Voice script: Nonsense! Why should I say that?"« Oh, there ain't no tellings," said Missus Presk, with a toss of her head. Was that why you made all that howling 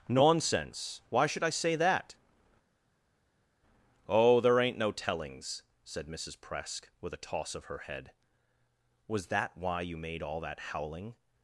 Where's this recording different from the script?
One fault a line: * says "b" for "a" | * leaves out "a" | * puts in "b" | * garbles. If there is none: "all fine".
all fine